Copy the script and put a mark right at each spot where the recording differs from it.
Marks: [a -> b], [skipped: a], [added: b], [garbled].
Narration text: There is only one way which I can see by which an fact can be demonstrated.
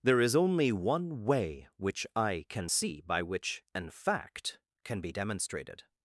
There is only one way which I can see by which an fact can be demonstrated.